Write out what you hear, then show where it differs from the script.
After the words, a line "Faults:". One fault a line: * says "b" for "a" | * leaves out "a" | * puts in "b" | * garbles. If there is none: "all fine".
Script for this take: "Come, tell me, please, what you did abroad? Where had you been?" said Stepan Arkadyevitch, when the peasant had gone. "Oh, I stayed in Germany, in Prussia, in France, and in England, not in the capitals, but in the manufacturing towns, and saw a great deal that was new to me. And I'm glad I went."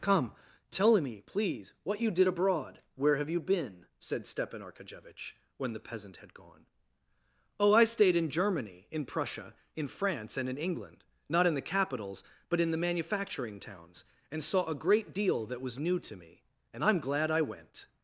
"Come, tell me, please, what you did abroad? Where have you been?" said Stepan Arkadyevitch, when the peasant had gone. "Oh, I stayed in Germany, in Prussia, in France, and in England, not in the capitals, but in the manufacturing towns, and saw a great deal that was new to me. And I'm glad I went."
Faults:
* says "have" for "had"